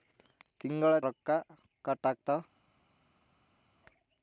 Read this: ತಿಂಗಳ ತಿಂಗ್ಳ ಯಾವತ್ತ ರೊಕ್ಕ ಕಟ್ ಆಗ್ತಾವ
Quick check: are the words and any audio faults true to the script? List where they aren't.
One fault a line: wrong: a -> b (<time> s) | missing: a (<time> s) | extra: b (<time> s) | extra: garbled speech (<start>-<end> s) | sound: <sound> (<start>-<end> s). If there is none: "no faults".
missing: ತಿಂಗ್ಳ ಯಾವತ್ತ (0.9 s)